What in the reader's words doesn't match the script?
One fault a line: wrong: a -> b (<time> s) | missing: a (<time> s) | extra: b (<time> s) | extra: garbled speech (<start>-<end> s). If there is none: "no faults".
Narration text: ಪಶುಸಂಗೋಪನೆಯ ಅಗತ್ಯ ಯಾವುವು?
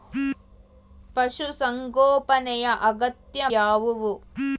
no faults